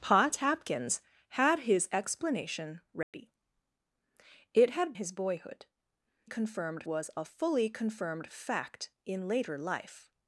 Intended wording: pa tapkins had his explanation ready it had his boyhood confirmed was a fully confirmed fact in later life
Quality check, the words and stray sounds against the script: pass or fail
fail